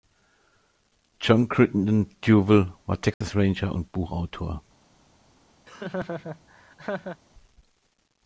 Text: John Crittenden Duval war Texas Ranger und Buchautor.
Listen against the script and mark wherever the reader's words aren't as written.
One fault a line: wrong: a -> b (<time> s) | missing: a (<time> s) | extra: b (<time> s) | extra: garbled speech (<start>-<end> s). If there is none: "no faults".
no faults